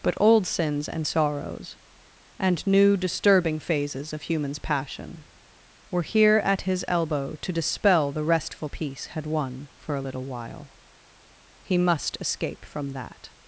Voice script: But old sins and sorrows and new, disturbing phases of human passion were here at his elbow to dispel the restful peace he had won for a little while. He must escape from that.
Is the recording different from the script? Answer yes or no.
yes